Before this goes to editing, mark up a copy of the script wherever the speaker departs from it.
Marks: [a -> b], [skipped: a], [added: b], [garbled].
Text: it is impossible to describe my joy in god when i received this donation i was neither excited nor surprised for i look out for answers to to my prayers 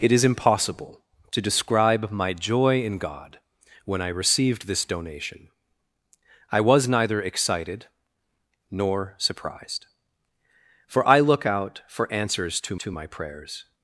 it is impossible to describe my joy in god when i received this donation i was neither excited nor surprised for i look out for answers to to my prayers